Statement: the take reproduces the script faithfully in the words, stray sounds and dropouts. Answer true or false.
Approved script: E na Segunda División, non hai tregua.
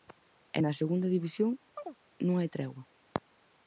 false